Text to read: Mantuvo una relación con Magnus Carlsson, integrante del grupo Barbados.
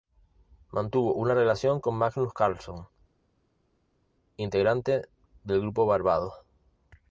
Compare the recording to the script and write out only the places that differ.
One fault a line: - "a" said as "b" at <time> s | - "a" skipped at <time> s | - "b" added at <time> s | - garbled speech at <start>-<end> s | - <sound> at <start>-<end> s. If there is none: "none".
none